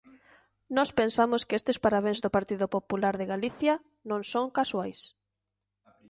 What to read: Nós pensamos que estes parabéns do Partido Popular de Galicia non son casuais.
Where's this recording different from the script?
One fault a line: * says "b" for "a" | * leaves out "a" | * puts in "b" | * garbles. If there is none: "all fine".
all fine